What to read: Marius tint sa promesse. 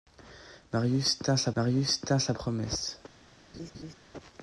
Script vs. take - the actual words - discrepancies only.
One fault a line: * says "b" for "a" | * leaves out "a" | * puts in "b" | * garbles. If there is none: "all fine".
* puts in "marius tint sa"